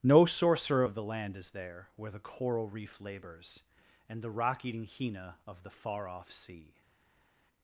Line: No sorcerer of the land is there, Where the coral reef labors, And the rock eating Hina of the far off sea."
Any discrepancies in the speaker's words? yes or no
no